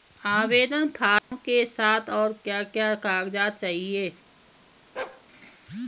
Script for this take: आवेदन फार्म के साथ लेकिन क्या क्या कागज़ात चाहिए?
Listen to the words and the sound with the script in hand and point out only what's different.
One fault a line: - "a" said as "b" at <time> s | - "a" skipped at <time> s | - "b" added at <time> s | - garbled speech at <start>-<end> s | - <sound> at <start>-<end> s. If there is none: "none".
- dropout at 1.2-1.3 s
- "लेकिन" said as "और" at 2.1 s
- bark at 5.0-5.2 s